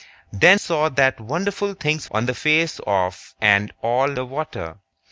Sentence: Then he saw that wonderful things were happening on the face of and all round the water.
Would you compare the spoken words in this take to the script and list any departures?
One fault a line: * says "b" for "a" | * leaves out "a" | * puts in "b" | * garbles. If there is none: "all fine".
* leaves out "he"
* leaves out "were happening"
* leaves out "round"